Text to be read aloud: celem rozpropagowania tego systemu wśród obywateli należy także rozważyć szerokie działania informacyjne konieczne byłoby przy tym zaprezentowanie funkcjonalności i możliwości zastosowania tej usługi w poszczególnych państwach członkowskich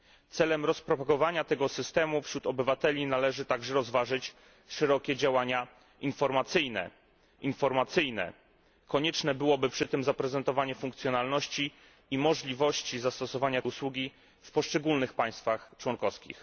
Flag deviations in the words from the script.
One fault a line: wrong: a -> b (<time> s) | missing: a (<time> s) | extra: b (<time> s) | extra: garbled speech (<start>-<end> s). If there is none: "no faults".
extra: informacyjne (7.4 s)
missing: tej (13.6 s)